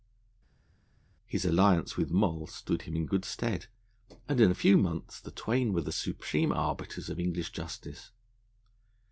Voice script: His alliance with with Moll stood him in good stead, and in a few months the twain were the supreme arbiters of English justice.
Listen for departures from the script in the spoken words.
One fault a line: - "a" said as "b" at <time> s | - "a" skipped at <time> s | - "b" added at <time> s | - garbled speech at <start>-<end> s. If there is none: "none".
- "with" skipped at 2.1 s